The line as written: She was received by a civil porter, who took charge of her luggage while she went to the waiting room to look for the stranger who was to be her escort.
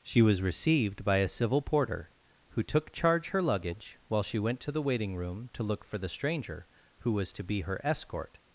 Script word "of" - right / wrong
wrong